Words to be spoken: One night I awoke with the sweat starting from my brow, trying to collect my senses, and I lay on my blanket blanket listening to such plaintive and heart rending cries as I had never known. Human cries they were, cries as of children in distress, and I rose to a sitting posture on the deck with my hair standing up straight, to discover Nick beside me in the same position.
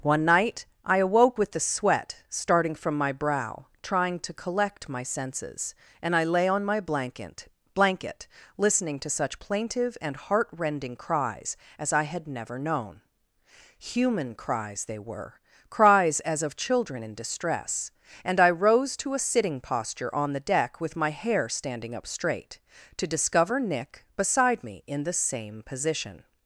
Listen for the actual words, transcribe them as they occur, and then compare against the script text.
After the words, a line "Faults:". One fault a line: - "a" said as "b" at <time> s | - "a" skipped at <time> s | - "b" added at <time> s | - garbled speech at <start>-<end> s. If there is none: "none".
One night I awoke with the sweat starting from my brow, trying to collect my senses, and I lay on my blanket blanket listening to such plaintive and heart rending cries as I had never known. Human cries they were, cries as of children in distress, and I rose to a sitting posture on the deck with my hair standing up straight, to discover Nick beside me in the same position.
Faults:
none